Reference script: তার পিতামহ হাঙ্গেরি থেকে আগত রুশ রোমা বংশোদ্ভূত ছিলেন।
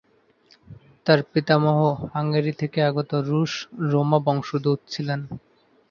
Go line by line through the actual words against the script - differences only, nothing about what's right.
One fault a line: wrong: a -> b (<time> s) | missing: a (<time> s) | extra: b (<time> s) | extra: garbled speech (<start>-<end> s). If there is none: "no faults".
no faults